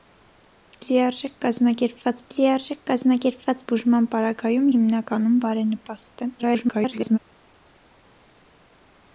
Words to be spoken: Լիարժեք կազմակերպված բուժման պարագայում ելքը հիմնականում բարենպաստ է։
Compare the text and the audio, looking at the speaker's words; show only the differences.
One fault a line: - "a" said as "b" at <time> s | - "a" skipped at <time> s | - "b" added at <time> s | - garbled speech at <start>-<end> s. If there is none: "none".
- "լիարժեք կազմակերպված" added at 2.3 s
- "ելքը" skipped at 4.7 s
- garbled speech at 6.4-7.2 s